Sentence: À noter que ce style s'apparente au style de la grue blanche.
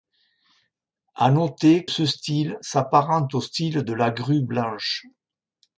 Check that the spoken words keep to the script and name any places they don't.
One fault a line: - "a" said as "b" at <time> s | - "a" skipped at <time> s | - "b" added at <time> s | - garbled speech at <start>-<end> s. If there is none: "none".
- "que" skipped at 1.9 s